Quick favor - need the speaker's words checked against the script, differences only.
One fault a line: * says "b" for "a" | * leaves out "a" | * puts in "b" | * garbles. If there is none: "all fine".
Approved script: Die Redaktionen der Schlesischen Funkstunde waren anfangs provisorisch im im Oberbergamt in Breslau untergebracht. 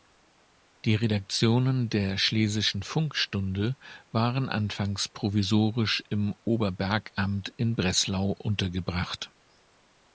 * leaves out "im"